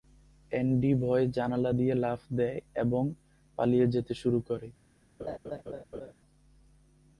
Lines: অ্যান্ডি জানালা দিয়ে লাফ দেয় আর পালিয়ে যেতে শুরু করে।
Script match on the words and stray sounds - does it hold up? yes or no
no